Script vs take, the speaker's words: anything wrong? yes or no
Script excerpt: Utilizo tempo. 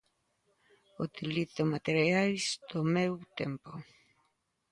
yes